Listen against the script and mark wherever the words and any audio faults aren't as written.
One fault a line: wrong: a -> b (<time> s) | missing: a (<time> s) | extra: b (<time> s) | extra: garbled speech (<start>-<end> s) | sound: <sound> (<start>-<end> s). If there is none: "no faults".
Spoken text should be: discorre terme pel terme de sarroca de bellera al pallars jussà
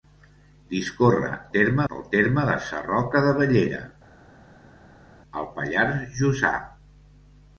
no faults